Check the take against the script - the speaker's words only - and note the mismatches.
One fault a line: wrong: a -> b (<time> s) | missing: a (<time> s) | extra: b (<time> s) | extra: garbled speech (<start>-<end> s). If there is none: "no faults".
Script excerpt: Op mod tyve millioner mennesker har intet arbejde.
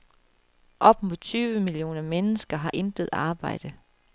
no faults